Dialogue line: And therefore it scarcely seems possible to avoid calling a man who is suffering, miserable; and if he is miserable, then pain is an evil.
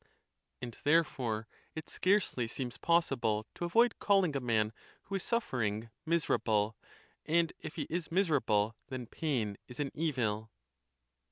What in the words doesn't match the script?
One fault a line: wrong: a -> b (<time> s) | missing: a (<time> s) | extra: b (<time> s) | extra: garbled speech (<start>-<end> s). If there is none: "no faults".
no faults